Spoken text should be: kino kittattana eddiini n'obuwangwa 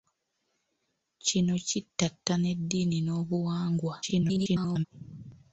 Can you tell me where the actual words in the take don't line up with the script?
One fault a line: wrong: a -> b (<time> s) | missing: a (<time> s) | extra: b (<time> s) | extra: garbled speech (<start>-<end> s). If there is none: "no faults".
extra: garbled speech (4.0-4.9 s)